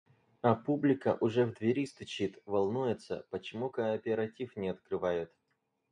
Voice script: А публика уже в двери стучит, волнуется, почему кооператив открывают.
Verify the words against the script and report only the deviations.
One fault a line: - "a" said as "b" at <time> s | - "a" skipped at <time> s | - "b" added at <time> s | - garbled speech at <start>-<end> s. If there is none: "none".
- "не" added at 4.5 s